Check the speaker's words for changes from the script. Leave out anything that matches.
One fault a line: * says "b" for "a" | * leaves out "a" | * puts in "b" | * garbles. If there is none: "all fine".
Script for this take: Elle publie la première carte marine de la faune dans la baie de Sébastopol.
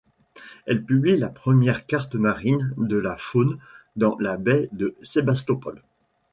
all fine